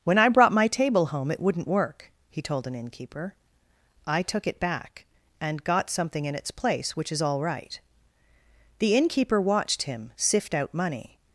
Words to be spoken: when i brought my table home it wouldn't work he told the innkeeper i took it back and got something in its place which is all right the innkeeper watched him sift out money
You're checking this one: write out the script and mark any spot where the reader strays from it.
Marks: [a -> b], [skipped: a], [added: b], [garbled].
when i brought my table home it wouldn't work he told [the -> an] innkeeper i took it back and got something in its place which is all right the innkeeper watched him sift out money